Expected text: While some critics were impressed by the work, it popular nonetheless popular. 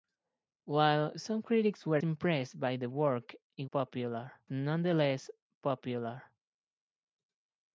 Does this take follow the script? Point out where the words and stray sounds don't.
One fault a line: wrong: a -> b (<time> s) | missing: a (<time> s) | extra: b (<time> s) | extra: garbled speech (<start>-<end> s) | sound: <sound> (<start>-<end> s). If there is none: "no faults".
no faults